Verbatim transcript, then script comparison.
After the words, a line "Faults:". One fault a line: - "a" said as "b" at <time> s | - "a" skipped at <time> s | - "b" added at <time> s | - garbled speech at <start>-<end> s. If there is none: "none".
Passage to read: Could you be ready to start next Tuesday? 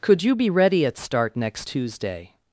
Could you be ready at start next Tuesday?
Faults:
- "to" said as "at" at 0.8 s